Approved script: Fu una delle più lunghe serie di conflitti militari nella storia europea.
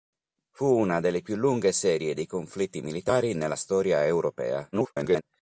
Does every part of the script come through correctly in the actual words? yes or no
no